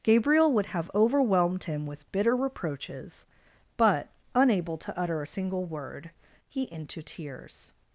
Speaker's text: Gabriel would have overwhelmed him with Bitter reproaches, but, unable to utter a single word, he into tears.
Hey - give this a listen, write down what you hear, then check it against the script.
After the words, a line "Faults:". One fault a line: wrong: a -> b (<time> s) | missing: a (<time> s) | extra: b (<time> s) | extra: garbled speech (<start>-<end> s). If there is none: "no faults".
Gabriel would have overwhelmed him with Bitter reproaches, but, unable to utter a single word, he into tears.
Faults:
no faults